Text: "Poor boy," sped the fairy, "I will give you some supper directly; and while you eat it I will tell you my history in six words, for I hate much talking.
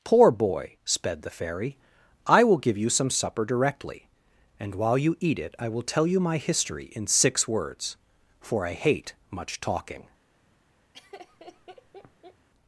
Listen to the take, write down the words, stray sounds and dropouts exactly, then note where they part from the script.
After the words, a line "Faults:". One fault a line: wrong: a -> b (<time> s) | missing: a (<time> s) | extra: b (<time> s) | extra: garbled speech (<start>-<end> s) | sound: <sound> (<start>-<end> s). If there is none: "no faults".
"Poor boy," sped the fairy, "I will give you some supper directly; and while you eat it I will tell you my history in six words, for I hate much talking.
Faults:
sound: laugh (10.9-12.5 s)